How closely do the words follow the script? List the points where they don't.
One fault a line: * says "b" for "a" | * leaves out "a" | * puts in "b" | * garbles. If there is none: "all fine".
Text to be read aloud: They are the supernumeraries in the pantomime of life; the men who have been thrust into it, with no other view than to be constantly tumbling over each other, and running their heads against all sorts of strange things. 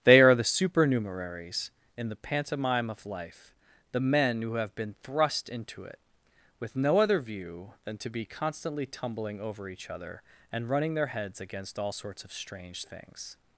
all fine